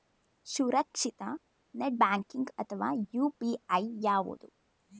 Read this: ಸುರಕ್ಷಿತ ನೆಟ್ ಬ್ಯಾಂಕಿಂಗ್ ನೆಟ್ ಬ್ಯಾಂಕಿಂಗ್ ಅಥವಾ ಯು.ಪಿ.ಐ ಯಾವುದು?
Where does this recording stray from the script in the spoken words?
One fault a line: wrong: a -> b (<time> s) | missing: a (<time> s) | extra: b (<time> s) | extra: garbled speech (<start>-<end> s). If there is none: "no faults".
missing: ನೆಟ್ ಬ್ಯಾಂಕಿಂಗ್ (2.5 s)